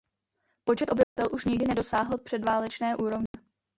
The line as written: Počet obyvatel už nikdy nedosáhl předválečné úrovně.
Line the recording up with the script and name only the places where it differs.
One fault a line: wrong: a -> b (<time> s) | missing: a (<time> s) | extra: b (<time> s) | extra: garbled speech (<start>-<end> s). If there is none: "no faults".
no faults